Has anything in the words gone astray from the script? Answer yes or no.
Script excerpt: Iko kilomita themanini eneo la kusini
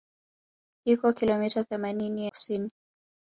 yes